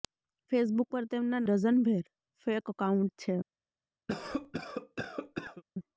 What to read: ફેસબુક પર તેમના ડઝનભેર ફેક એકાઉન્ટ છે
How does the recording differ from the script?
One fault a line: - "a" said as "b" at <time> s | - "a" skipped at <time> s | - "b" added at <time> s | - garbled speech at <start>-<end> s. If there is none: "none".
none